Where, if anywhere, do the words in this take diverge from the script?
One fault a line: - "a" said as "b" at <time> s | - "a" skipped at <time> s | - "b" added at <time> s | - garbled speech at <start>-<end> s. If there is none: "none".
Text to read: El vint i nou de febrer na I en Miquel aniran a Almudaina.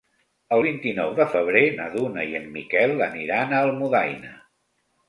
- "Duna" added at 2.0 s